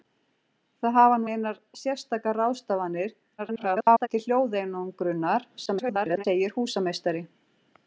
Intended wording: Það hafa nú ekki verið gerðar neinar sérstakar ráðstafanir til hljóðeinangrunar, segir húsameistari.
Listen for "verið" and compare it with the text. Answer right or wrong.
wrong